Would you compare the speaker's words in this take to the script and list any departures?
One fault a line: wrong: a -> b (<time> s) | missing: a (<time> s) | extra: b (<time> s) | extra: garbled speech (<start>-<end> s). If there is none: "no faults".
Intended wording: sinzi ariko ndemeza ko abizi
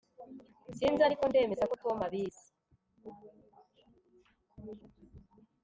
extra: tom (1.8 s)